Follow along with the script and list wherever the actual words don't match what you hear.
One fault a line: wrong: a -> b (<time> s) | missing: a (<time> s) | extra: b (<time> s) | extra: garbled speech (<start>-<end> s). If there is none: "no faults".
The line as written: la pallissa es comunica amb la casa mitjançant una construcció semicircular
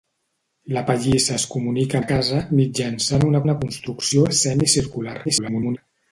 missing: amb (2.0 s)
extra: una (3.4 s)
extra: garbled speech (5.2-5.8 s)